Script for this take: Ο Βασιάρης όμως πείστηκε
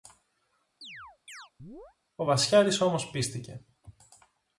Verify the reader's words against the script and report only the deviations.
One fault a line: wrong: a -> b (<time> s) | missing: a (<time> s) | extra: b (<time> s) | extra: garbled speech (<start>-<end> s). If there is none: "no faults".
no faults